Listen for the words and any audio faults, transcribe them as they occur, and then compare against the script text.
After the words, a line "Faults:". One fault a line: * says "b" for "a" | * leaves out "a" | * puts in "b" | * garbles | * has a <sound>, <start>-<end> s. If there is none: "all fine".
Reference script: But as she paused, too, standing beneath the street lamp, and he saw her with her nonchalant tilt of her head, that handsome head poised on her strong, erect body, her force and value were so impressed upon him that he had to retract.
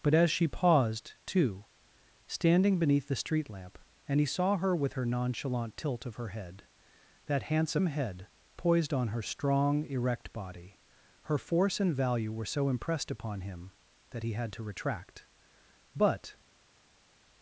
But as she paused, too, standing beneath the street lamp, and he saw her with her nonchalant tilt of her head, that handsome head poised on her strong, erect body, her force and value were so impressed upon him that he had to retract. But
Faults:
* puts in "But"